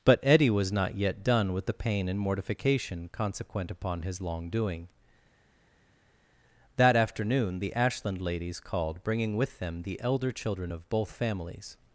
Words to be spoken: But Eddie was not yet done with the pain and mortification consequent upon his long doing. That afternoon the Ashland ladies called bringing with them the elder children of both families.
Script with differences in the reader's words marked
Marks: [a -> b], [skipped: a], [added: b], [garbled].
But Eddie was not yet done with the pain and mortification consequent upon his long doing. That afternoon the Ashland ladies called bringing with them the elder children of both families.